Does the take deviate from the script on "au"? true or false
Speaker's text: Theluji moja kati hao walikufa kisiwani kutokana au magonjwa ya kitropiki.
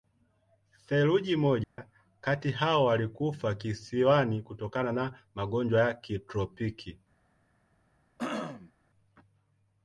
true